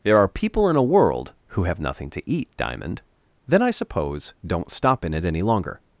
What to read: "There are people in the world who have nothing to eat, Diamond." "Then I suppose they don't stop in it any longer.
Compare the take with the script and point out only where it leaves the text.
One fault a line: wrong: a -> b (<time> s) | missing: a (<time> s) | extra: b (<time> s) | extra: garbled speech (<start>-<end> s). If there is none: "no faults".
wrong: the -> a (0.8 s)
missing: they (4.3 s)